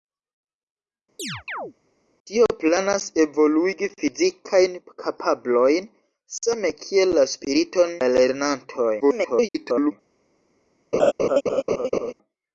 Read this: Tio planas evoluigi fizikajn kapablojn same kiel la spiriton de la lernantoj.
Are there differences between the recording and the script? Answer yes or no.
yes